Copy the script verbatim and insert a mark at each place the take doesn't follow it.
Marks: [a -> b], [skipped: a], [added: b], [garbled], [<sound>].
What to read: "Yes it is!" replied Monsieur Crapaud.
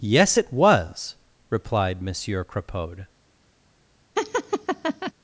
"Yes it [is!" -> was] replied Monsieur Crapaud. [laugh]